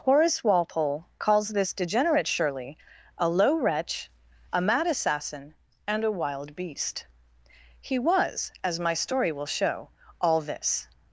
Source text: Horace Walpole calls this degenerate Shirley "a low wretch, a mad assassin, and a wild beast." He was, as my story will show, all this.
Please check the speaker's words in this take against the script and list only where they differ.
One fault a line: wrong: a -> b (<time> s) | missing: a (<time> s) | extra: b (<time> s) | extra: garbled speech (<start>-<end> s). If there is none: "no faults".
no faults